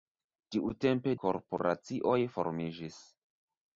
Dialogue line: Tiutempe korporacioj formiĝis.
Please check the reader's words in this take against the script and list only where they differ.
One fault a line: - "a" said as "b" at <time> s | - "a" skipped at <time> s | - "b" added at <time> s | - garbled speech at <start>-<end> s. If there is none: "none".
none